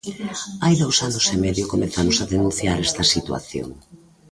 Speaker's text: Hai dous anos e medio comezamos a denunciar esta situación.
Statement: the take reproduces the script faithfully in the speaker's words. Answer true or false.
true